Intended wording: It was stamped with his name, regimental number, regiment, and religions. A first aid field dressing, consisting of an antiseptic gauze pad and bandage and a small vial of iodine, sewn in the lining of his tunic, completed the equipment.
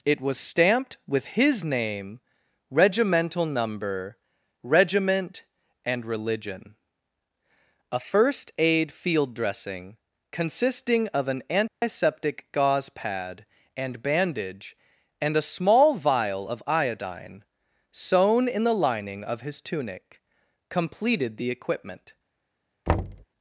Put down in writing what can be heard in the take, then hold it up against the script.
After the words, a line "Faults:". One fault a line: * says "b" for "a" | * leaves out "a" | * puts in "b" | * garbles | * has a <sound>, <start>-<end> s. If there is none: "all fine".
It was stamped with his name, regimental number, regiment, and religion. A first aid field dressing, consisting of an antiseptic gauze pad and bandage and a small vial of iodine, sewn in the lining of his tunic, completed the equipment.
Faults:
* says "religion" for "religions"
* has a dropout, 11.7-11.8 s
* has a thud, 22.9-23.2 s